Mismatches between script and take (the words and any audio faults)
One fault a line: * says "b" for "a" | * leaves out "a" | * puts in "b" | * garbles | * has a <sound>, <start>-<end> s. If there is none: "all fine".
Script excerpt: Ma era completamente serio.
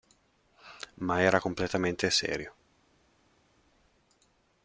all fine